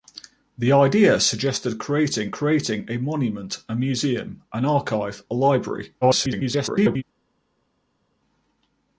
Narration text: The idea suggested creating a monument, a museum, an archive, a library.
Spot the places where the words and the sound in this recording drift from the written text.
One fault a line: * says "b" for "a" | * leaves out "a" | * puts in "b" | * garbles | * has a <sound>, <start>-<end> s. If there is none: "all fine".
* puts in "creating"
* garbles